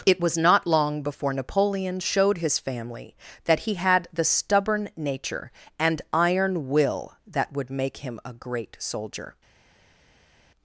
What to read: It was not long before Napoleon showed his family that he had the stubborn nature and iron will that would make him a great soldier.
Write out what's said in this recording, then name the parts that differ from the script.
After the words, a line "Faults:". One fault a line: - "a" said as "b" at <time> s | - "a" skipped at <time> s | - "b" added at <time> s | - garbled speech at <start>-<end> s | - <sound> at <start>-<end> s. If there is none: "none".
It was not long before Napoleon showed his family that he had the stubborn nature and iron will that would make him a great soldier.
Faults:
none